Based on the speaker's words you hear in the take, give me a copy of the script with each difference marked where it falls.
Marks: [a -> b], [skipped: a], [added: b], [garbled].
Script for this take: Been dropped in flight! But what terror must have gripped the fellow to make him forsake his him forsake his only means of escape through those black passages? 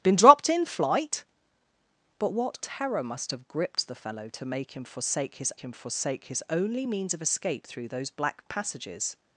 Been dropped in flight! But what terror must have gripped the fellow to make him forsake his him forsake his only means of escape through those black passages?